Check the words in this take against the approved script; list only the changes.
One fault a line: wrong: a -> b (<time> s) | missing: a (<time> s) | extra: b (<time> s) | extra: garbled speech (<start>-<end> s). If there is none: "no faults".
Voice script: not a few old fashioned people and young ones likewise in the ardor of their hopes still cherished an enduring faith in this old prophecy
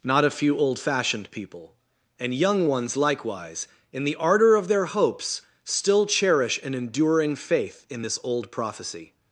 wrong: cherished -> cherish (6.1 s)